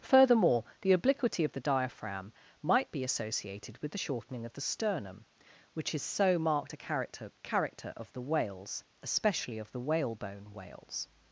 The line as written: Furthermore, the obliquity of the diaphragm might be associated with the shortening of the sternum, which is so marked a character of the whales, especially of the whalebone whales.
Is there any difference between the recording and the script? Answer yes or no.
yes